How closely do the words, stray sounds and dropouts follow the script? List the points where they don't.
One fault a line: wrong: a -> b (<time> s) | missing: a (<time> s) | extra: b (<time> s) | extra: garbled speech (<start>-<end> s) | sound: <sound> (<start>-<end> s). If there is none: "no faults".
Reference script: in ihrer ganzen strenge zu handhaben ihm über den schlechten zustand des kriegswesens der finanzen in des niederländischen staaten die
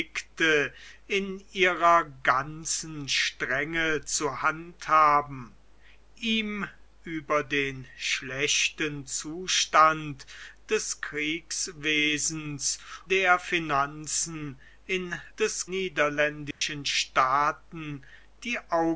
sound: dropout (16.5-16.6 s)